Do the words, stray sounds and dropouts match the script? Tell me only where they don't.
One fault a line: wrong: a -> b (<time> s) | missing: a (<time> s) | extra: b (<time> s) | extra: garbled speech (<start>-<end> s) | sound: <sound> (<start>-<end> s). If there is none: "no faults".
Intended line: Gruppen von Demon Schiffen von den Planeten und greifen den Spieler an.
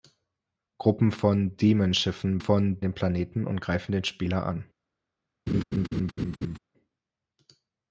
sound: laugh (5.5-6.6 s)